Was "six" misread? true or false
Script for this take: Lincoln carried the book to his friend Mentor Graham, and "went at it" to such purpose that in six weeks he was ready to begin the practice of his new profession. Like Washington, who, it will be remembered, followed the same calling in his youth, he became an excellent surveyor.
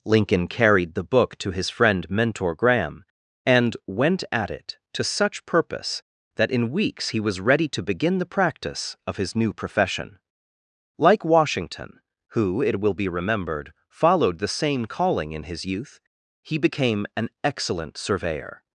true